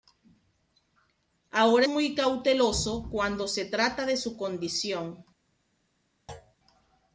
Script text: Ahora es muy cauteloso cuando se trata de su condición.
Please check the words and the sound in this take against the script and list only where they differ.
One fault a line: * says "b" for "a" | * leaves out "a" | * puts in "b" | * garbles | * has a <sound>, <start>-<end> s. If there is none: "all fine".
* leaves out "es"
* has a thud, 6.3-6.6 s